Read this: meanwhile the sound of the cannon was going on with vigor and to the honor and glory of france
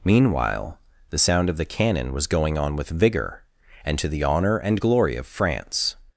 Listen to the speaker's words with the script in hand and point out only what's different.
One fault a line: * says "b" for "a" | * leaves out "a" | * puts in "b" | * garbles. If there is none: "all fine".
all fine